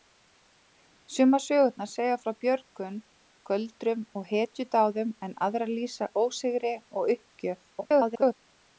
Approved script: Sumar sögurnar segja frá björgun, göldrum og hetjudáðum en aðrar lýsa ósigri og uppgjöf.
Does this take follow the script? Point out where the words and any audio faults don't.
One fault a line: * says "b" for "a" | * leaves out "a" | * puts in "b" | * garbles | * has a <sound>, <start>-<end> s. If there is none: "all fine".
* garbles